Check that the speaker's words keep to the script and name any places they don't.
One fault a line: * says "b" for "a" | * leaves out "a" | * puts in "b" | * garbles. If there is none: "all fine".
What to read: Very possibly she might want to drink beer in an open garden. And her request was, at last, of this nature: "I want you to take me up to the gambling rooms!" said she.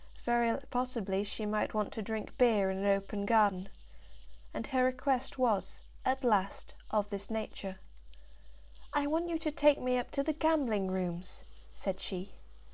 all fine